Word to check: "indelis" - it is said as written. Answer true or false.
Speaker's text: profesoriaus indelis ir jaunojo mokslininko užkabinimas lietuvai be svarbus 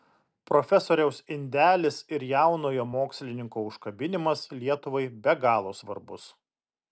true